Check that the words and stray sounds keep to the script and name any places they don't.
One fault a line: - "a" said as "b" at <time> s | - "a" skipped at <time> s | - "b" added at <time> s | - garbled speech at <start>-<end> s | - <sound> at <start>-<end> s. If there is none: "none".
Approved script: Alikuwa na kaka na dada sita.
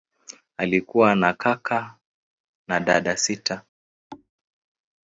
- thud at 4.1-4.3 s